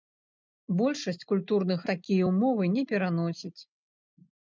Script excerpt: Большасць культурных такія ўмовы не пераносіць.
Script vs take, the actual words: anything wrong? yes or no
no